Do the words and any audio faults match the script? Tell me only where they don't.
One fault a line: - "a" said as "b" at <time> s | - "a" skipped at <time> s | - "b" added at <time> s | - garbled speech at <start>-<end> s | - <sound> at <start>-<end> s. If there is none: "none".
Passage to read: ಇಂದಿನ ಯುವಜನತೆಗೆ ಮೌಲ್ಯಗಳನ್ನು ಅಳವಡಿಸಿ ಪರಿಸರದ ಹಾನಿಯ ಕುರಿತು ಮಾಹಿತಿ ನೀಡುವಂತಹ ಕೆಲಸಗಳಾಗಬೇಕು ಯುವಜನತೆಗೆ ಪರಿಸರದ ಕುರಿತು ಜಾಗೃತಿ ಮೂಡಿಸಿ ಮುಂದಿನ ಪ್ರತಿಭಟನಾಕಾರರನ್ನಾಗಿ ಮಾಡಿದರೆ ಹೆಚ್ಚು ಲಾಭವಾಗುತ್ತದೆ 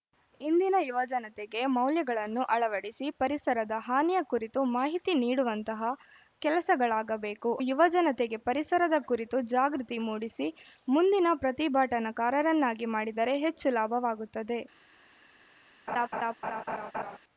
- laugh at 15.9-17.2 s